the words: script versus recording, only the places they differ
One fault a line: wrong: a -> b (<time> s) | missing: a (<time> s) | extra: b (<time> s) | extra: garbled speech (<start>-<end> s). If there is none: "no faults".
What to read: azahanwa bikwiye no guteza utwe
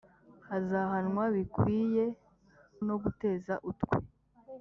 no faults